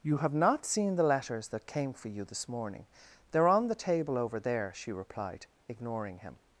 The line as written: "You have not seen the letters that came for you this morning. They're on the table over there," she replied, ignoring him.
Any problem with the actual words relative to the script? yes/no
no